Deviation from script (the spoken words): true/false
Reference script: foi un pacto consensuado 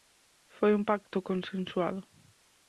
false